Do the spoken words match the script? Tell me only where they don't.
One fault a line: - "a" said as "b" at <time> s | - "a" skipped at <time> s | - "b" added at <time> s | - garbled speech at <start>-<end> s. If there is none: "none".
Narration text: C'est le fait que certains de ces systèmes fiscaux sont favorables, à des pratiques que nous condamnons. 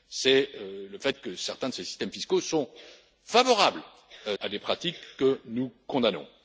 none